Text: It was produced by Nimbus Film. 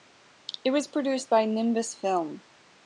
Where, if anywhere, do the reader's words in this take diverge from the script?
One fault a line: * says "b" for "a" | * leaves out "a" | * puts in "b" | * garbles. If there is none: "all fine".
all fine